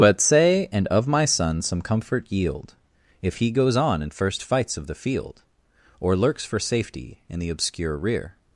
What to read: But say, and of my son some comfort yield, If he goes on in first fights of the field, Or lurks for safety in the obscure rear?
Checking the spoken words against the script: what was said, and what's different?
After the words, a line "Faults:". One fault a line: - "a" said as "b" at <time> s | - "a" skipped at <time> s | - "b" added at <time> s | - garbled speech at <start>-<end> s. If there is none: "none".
But say, and of my son some comfort yield, If he goes on in first fights of the field, Or lurks for safety in the obscure rear?
Faults:
none